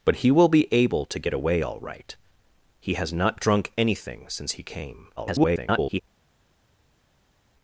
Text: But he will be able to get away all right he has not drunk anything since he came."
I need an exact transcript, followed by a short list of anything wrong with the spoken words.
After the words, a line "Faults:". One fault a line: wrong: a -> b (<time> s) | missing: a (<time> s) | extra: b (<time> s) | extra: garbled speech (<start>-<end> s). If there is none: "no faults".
But he will be able to get away all right he has not drunk anything since he came." [garbled]
Faults:
extra: garbled speech (5.2-6.0 s)